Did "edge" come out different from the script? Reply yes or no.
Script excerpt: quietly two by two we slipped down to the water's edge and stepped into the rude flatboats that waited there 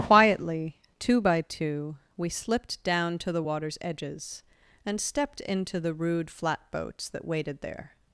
yes